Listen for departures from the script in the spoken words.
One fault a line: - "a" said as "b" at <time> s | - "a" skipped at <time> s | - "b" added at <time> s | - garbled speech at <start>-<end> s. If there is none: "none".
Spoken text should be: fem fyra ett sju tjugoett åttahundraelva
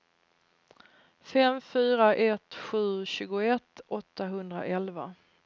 none